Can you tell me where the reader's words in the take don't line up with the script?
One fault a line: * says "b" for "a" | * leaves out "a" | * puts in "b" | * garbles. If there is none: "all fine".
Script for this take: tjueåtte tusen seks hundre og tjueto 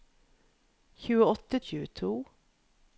* leaves out "tusen seks hundre"